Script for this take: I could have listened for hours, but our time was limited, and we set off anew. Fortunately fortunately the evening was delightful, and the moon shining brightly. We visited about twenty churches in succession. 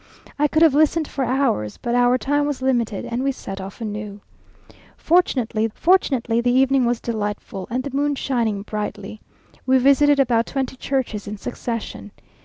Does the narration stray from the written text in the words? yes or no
no